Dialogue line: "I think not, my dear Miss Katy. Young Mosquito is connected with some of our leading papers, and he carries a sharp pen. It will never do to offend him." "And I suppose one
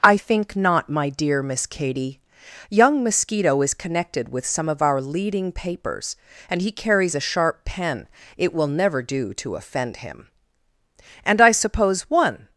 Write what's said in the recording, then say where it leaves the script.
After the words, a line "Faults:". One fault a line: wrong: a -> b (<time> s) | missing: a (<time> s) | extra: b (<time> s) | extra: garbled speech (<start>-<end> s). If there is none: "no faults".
"I think not, my dear Miss Katy. Young Mosquito is connected with some of our leading papers, and he carries a sharp pen. It will never do to offend him." "And I suppose one
Faults:
no faults